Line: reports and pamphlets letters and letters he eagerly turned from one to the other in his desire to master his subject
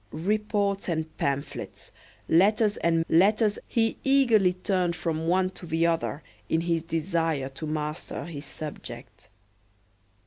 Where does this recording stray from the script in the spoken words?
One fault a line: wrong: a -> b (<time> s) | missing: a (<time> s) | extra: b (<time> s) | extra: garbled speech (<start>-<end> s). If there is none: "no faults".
no faults